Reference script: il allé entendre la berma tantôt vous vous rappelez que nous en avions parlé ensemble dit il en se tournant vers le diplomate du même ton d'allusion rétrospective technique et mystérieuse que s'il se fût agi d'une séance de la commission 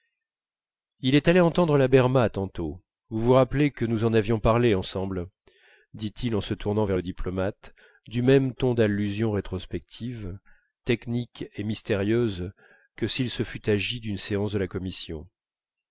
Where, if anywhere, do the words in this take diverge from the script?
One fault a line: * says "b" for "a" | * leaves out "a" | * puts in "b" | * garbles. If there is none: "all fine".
* puts in "est"